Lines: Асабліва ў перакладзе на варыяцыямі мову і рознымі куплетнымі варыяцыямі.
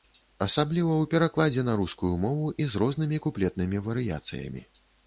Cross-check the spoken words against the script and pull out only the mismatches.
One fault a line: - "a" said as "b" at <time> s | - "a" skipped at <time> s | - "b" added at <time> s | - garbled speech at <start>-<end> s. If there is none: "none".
- "варыяцыямі" said as "рускую" at 1.8 s
- "з" added at 2.7 s